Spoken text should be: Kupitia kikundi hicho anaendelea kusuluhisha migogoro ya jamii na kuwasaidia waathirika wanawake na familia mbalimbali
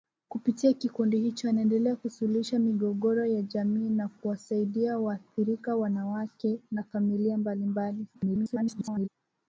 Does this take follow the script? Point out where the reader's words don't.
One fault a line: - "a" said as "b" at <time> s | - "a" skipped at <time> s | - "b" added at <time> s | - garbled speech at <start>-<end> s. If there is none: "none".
- garbled speech at 8.1-9.1 s